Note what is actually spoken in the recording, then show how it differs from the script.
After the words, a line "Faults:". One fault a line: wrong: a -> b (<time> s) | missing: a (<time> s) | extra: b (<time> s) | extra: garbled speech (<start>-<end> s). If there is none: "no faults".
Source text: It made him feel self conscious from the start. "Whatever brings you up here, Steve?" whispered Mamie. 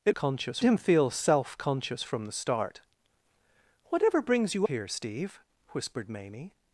It conscious him feel self conscious from the start. "Whatever brings you here, Steve?" whispered Mamie.
Faults:
wrong: made -> conscious (0.1 s)
missing: up (4.7 s)